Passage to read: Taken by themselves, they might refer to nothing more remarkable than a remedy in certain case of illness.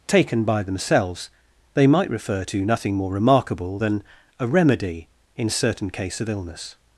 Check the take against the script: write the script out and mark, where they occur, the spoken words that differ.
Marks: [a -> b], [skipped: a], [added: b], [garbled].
Taken by themselves, they might refer to nothing more remarkable than a remedy in certain case of illness.